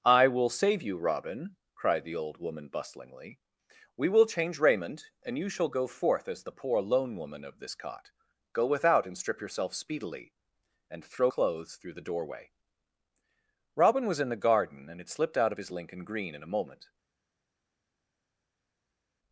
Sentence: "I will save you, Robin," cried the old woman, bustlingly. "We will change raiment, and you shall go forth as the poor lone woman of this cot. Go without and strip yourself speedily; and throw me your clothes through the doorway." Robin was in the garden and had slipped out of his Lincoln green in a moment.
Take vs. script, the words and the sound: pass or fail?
fail